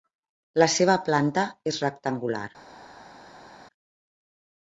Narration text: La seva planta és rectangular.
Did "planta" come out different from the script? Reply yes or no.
no